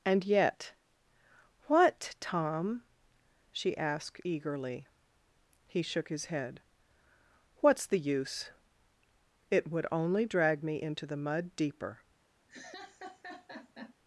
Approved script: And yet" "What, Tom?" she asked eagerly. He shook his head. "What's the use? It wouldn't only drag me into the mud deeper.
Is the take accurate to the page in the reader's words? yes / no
no